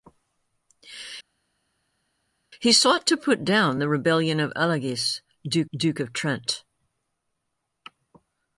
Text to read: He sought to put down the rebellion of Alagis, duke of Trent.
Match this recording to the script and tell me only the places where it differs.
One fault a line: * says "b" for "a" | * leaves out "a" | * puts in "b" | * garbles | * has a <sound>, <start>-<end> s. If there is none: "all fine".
* puts in "duke"